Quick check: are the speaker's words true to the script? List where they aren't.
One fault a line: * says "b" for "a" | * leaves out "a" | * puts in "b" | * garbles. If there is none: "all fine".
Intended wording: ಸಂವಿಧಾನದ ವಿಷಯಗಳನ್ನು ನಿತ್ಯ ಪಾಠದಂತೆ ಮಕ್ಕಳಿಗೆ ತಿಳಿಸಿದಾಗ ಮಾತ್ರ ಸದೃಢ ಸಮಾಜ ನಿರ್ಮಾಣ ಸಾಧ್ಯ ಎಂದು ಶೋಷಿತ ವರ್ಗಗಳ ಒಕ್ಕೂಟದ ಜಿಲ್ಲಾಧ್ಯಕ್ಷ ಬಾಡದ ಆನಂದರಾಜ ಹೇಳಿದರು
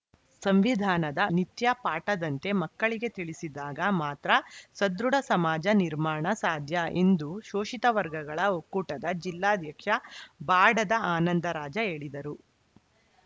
* leaves out "ವಿಷಯಗಳನ್ನು"